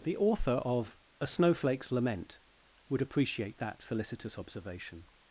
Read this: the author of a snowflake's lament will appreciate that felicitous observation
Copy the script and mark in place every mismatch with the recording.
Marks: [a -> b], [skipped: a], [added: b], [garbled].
the author of a snowflake's lament [will -> would] appreciate that felicitous observation